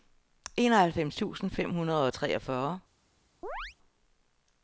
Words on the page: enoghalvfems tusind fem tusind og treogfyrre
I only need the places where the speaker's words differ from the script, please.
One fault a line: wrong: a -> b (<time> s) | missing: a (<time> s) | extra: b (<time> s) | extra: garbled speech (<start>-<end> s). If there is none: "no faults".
wrong: tusind -> hundrede (1.7 s)